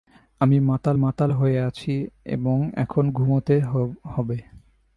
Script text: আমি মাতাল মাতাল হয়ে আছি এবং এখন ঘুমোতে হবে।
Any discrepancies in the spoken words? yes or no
no